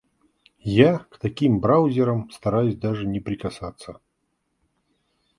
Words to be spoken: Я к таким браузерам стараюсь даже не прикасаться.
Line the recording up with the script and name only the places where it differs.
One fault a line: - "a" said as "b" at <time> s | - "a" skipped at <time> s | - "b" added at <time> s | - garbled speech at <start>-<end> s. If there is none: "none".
none